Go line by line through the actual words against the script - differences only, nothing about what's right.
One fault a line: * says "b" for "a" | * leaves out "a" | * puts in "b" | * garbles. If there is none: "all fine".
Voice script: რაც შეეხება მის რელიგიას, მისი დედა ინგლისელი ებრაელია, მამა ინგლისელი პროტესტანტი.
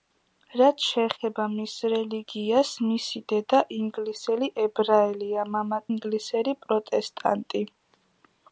all fine